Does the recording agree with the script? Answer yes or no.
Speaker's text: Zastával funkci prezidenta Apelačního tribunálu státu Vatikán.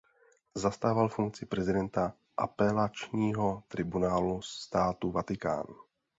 yes